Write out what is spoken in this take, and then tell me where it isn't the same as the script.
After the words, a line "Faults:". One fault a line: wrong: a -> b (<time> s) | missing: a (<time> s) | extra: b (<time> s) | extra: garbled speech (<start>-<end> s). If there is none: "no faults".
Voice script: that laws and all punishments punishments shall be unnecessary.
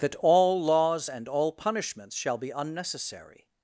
that all laws and all punishments shall be unnecessary.
Faults:
extra: all (0.2 s)
missing: punishments (2.2 s)